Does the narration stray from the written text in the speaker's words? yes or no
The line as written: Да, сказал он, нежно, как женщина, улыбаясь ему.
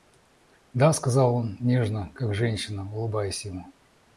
no